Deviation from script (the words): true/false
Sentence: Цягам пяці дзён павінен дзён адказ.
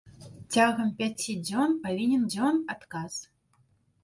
false